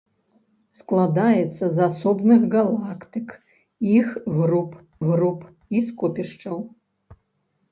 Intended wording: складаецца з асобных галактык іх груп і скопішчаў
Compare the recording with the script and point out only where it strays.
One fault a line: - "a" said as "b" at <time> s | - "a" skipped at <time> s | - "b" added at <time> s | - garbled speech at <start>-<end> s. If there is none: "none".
- "груп" added at 5.1 s